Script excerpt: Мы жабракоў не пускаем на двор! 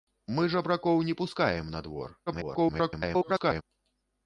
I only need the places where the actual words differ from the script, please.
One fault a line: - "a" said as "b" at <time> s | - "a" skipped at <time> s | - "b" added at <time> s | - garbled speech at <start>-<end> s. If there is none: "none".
- garbled speech at 2.3-3.6 s